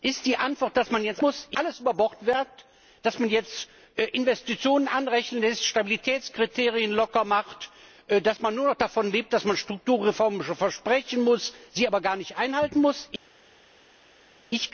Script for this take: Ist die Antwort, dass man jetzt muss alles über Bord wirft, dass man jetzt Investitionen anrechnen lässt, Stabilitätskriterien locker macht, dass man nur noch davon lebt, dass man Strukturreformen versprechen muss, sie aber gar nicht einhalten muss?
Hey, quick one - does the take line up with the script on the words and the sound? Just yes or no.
yes